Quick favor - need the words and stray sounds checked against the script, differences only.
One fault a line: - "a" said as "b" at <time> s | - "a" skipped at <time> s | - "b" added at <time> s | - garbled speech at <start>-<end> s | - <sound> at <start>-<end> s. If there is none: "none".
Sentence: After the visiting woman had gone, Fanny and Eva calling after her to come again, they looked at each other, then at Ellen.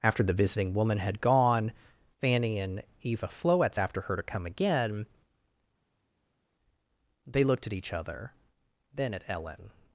- "calling" said as "floetz" at 3.3 s